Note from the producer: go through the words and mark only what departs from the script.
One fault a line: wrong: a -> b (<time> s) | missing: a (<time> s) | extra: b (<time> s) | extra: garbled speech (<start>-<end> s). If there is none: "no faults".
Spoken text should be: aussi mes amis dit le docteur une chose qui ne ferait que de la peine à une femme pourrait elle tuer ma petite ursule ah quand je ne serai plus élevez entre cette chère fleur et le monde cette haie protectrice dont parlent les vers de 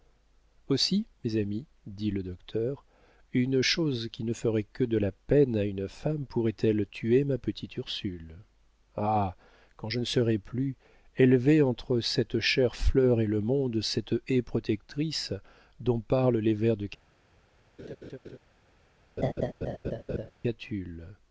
no faults